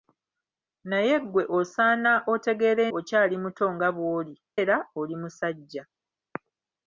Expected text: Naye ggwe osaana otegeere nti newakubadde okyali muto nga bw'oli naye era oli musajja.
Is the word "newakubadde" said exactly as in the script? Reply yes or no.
no